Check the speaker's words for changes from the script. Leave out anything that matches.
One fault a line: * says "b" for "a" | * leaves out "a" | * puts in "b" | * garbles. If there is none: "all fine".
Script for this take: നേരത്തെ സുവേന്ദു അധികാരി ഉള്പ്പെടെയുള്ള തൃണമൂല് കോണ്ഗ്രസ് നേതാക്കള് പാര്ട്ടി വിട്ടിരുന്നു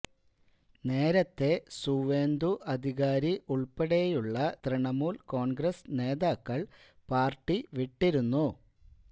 all fine